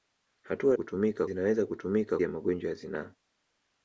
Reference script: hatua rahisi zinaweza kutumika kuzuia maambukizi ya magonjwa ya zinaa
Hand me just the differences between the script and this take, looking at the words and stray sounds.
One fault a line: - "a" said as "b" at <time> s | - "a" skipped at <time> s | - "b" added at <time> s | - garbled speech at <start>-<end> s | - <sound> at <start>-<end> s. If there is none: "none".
- "rahisi" said as "kutumika" at 0.7 s
- "kuzuia maambukizi" skipped at 2.2 s